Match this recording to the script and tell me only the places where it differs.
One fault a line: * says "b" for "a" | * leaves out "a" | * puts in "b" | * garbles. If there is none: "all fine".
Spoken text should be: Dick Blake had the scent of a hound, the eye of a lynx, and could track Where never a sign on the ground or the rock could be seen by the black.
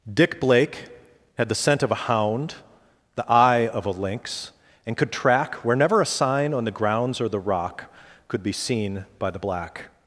* says "grounds" for "ground"